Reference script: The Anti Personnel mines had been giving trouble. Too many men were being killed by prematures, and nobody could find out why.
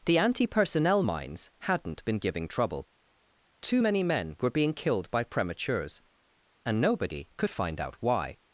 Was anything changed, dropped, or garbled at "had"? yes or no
yes